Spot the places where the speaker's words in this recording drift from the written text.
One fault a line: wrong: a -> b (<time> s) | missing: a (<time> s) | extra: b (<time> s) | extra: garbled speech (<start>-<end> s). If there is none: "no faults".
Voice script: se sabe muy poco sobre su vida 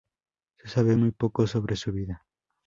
no faults